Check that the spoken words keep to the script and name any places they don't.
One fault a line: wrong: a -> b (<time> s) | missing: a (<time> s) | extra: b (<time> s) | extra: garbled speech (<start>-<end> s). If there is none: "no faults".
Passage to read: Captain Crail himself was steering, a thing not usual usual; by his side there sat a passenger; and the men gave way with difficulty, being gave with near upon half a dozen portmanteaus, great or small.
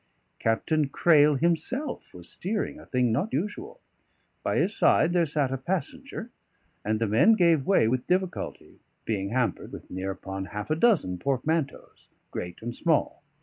missing: usual (3.8 s)
wrong: gave -> hampered (9.3 s)
wrong: or -> and (12.6 s)